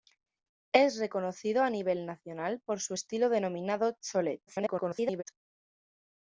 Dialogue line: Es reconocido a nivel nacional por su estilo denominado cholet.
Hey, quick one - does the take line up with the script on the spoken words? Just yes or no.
no